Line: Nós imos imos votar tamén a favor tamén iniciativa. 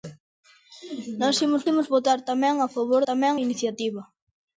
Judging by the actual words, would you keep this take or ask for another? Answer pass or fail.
pass